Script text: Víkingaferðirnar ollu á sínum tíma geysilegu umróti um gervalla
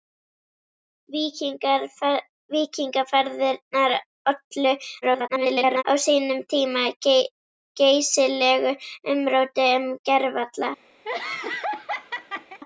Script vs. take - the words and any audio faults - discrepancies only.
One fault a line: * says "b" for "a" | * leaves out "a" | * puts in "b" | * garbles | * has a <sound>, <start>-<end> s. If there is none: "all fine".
* garbles
* has a laugh, 11.0-12.6 s